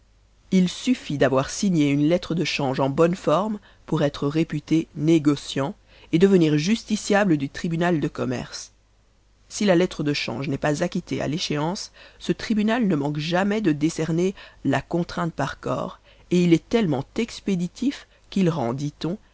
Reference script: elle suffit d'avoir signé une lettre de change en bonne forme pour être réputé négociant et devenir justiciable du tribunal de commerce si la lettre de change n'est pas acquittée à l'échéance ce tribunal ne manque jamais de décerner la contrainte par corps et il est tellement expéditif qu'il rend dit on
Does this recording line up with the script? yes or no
no